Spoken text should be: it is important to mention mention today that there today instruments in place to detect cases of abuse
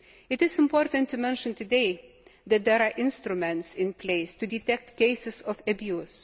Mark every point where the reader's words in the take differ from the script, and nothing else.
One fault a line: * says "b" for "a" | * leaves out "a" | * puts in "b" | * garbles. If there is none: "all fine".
* leaves out "mention"
* says "are" for "today"